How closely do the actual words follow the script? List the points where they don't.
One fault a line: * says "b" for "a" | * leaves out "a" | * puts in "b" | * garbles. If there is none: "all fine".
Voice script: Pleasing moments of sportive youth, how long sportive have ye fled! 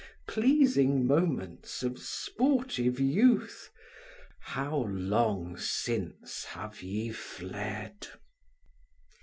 * says "since" for "sportive"